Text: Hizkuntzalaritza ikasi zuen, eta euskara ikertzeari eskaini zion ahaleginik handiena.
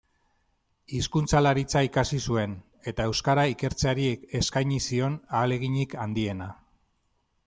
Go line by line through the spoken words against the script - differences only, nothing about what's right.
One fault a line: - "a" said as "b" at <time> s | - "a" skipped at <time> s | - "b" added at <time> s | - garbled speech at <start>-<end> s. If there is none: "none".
none